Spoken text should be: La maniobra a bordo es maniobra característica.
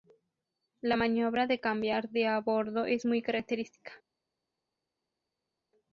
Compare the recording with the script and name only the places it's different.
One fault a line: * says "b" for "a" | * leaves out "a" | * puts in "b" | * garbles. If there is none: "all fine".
* puts in "de cambiar de"
* says "muy" for "maniobra"